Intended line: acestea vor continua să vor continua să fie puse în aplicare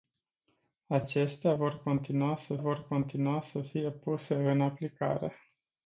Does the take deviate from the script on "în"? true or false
false